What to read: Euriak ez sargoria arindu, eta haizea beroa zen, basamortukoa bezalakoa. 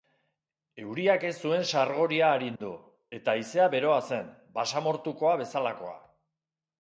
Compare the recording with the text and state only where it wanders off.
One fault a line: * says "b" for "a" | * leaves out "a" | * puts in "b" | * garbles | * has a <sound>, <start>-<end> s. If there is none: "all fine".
* puts in "zuen"
* has a dropout, 2.6-2.6 s